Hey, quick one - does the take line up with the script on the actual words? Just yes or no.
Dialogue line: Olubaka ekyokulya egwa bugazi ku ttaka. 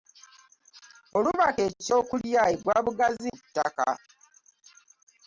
yes